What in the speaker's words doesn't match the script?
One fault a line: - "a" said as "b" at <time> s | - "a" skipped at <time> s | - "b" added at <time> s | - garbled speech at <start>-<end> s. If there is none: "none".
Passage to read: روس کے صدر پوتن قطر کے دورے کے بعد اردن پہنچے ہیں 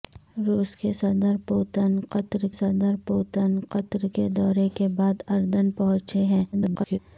- "صدر پوتن قطر" added at 2.5 s
- garbled speech at 6.5-7.0 s